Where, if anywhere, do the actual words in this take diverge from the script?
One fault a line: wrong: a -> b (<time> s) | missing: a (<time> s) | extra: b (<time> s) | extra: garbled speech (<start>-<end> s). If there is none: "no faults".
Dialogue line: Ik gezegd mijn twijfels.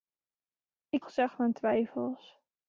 no faults